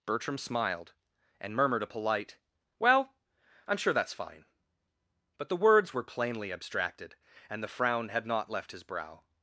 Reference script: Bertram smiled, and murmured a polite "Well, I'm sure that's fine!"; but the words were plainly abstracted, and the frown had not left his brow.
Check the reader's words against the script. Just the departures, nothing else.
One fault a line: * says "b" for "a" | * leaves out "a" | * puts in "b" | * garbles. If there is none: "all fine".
all fine